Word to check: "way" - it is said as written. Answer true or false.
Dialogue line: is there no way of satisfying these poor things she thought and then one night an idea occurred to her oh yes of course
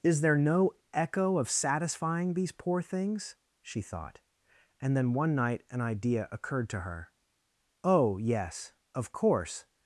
false